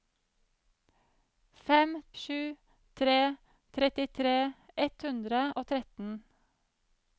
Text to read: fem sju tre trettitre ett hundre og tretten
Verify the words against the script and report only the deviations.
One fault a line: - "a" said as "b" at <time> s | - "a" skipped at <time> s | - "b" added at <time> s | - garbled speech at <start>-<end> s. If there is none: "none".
none